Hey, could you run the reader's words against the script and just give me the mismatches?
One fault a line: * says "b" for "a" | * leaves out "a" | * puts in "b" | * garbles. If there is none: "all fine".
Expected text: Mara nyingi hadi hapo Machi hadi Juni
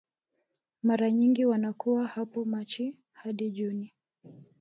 * says "wanakuwa" for "hadi"